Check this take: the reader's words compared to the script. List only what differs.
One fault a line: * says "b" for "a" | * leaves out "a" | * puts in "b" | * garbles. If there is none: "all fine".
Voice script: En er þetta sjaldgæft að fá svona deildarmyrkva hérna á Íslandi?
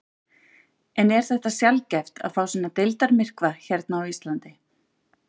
all fine